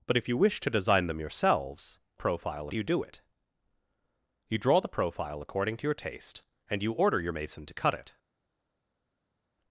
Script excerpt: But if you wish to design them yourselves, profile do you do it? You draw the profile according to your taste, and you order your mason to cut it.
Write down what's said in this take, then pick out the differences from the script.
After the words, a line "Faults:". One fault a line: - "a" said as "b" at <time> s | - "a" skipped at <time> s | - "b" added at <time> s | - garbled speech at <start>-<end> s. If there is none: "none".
But if you wish to design them yourselves, profile do you do it? You draw the profile according to your taste, and you order your mason to cut it.
Faults:
none